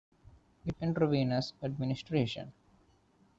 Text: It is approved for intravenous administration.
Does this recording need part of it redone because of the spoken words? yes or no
yes